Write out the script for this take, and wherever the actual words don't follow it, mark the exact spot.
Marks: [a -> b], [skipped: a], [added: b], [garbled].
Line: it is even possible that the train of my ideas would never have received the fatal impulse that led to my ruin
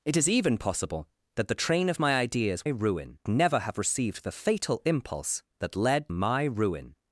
it is even possible that the train of my ideas [would -> ruin] never have received the fatal impulse that led [skipped: to] my ruin